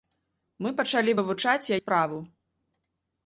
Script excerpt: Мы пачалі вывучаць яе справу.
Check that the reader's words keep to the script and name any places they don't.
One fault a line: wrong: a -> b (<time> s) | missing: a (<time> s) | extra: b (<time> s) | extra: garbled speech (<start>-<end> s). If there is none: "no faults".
missing: яе (1.7 s)